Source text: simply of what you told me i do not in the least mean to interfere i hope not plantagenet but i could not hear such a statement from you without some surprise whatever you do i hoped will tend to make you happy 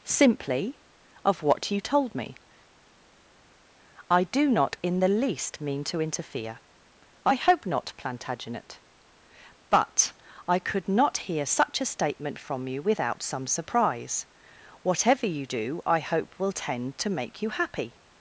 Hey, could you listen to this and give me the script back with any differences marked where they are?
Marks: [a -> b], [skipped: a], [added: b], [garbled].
simply of what you told me i do not in the least mean to interfere i hope not plantagenet but i could not hear such a statement from you without some surprise whatever you do i [hoped -> hope] will tend to make you happy